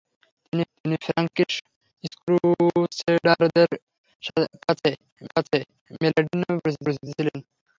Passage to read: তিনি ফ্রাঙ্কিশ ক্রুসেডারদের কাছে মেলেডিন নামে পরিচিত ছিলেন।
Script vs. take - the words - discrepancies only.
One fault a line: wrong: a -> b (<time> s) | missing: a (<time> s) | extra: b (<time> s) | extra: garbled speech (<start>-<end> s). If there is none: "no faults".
extra: তিনি (0.8 s)
extra: কাছে (5.3 s)
extra: পরিচিত (6.8 s)